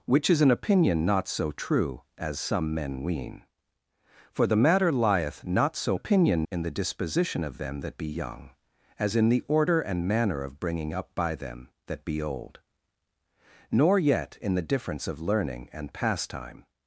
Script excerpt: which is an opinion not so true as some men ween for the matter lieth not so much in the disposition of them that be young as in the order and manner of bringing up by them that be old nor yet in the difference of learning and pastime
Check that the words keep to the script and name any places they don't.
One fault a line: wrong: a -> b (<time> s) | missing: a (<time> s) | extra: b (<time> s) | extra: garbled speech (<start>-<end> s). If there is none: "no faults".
wrong: much -> opinion (5.9 s)